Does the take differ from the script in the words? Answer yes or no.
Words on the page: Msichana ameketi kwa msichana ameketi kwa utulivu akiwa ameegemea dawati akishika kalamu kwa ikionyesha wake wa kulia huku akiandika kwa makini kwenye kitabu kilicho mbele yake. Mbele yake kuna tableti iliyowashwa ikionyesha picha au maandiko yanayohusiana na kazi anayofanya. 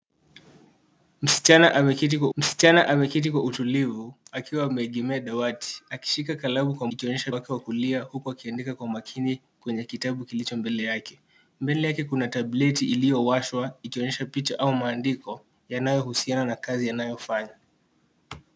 no